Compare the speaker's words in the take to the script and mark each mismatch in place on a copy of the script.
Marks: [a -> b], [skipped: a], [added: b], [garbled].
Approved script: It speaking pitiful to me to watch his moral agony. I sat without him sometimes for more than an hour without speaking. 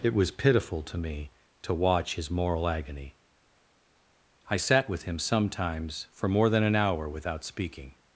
It [speaking -> was] pitiful to me to watch his moral agony. I sat [without -> with] him sometimes for more than an hour without speaking.